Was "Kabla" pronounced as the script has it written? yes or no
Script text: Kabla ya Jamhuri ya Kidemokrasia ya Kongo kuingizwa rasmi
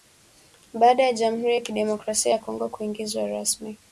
no